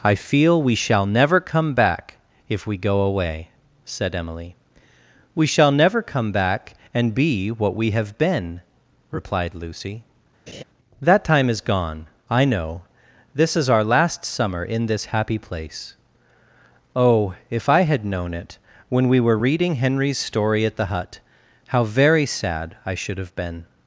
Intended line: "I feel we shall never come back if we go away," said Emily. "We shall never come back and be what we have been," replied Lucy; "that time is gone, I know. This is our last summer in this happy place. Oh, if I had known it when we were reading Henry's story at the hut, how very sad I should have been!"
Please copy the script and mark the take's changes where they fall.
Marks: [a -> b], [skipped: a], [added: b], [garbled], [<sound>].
"I feel we shall never come back if we go away," said Emily. "We shall never come back and be what we have been," replied Lucy; [laugh] "that time is gone, I know. This is our last summer in this happy place. Oh, if I had known it when we were reading Henry's story at the hut, how very sad I should have been!"